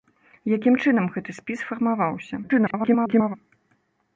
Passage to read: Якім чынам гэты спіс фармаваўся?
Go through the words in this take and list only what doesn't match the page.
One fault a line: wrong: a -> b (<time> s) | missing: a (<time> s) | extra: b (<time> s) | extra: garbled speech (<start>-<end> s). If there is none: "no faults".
extra: garbled speech (2.4-3.3 s)